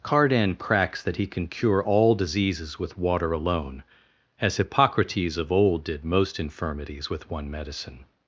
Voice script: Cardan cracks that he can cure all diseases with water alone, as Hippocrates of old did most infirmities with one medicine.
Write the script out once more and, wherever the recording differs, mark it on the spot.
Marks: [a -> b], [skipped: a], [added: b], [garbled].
Cardan cracks that he can cure all diseases with water alone, as Hippocrates of old did most infirmities with one medicine.